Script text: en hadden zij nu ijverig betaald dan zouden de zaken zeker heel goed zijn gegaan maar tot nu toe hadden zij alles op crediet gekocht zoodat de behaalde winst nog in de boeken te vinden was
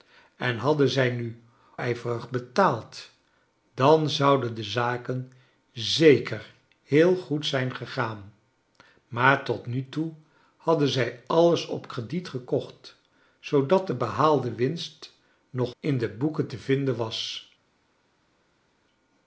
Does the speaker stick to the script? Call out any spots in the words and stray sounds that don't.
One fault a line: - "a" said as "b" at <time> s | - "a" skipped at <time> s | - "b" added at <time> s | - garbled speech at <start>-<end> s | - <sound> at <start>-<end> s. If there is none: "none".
none